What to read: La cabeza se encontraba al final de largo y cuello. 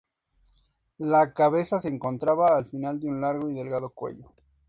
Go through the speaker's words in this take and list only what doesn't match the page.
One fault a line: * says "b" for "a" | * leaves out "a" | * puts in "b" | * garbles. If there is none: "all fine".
* puts in "un"
* puts in "delgado"